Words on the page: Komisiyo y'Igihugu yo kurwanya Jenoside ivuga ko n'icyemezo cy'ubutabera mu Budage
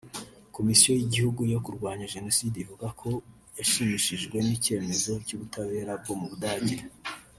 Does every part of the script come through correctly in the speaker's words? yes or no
no